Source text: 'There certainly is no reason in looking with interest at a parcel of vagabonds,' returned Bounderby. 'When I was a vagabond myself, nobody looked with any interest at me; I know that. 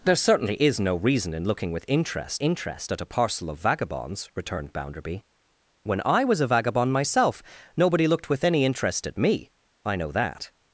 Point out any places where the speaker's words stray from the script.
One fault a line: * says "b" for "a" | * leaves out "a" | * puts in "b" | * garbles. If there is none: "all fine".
* puts in "interest"